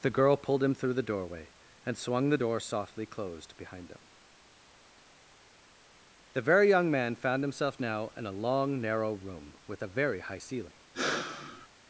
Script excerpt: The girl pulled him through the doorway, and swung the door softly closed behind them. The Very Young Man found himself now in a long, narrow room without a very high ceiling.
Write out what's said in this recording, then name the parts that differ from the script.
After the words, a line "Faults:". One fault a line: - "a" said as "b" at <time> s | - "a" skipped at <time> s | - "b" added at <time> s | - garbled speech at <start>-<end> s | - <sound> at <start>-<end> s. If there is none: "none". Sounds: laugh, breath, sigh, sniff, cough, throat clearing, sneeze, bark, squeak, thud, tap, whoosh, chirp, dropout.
The girl pulled him through the doorway, and swung the door softly closed behind them. The Very Young Man found himself now in a long, narrow room with a very high ceiling.
Faults:
- "without" said as "with" at 9.7 s
- sigh at 10.9-11.7 s